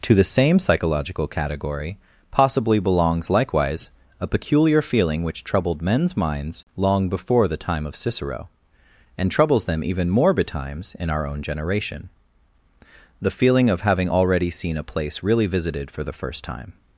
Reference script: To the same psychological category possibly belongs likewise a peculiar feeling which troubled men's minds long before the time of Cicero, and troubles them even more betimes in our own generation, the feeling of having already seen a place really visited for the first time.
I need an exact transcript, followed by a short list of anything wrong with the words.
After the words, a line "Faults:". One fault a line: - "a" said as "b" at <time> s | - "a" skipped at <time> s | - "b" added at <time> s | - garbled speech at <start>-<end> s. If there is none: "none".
To the same psychological category possibly belongs likewise a peculiar feeling which troubled men's minds long before the time of Cicero, and troubles them even more betimes in our own generation, the feeling of having already seen a place really visited for the first time.
Faults:
none